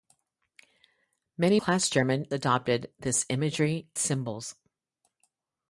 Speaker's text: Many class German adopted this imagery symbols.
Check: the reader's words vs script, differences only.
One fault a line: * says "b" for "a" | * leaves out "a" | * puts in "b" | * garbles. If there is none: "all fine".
all fine